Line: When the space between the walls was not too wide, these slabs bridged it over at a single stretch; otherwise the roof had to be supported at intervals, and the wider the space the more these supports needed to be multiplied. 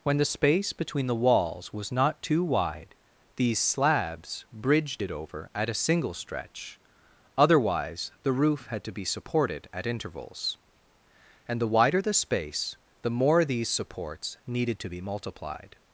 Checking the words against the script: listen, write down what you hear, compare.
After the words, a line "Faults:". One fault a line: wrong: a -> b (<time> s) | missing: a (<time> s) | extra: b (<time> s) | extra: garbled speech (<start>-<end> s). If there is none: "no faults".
When the space between the walls was not too wide, these slabs bridged it over at a single stretch; otherwise the roof had to be supported at intervals, and the wider the space the more these supports needed to be multiplied.
Faults:
no faults